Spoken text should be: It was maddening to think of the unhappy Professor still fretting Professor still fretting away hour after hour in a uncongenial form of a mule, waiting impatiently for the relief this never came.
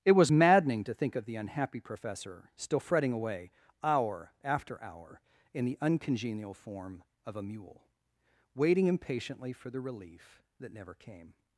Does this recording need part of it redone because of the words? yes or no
yes